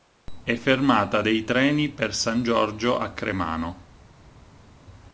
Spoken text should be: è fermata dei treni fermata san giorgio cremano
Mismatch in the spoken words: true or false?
true